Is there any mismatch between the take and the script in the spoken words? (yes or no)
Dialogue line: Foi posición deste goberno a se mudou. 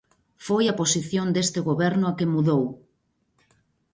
yes